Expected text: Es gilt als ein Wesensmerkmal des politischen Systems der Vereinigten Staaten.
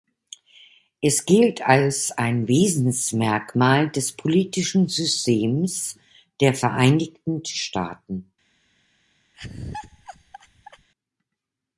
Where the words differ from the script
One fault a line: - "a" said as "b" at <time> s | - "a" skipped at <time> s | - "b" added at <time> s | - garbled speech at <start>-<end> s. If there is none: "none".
none